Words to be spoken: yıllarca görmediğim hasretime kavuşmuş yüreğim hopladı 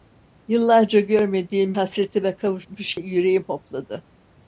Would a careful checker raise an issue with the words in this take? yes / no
no